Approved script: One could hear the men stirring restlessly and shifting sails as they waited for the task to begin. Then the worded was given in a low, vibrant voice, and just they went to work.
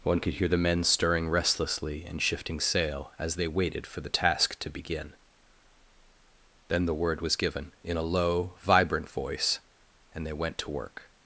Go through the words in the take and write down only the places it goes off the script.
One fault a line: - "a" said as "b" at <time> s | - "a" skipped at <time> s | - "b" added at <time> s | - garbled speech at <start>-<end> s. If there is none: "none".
- "sails" said as "sail" at 2.6 s
- "worded" said as "word" at 7.0 s
- "just" skipped at 10.2 s